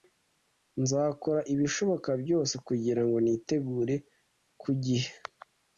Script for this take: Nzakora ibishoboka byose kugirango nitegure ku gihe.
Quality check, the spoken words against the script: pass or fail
pass